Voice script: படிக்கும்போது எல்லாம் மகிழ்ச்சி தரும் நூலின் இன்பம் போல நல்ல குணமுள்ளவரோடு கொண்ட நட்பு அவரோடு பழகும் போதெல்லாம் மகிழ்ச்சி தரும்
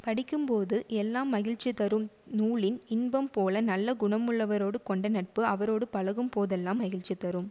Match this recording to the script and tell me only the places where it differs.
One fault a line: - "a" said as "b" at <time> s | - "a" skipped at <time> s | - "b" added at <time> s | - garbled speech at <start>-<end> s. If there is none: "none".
none